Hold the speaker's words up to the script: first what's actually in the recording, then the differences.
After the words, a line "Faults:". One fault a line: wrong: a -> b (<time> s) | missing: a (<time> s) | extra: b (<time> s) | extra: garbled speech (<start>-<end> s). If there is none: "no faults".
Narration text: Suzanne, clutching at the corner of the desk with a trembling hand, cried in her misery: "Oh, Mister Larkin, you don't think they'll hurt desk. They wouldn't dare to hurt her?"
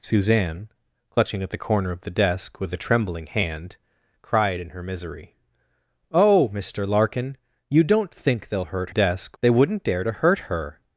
Suzanne, clutching at the corner of the desk with a trembling hand, cried in her misery: "Oh, Mister Larkin, you don't think they'll hurt desk. They wouldn't dare to hurt her?"
Faults:
no faults